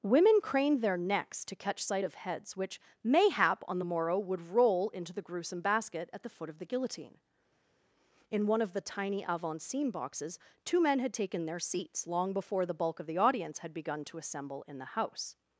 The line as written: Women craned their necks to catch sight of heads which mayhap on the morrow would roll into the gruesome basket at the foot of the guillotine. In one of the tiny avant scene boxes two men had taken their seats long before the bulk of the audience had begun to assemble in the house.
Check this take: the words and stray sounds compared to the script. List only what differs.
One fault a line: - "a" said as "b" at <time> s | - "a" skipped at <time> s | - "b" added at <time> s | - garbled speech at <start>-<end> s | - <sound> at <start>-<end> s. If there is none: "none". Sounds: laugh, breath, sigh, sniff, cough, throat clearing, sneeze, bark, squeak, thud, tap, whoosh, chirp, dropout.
none